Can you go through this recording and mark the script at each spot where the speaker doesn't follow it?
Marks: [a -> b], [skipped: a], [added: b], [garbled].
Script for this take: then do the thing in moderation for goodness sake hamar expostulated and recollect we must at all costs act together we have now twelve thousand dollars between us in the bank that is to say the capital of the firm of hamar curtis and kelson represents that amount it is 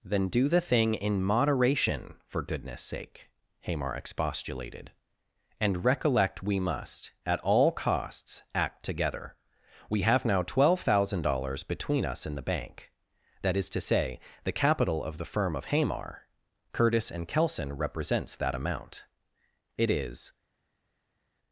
then do the thing in moderation for goodness sake hamar expostulated and recollect we must at all costs act together we have now twelve thousand dollars between us in the bank that is to say the capital of the firm of hamar curtis and kelson represents that amount it is